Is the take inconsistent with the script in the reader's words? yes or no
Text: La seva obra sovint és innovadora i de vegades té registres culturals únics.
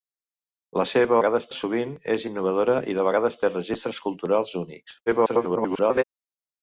yes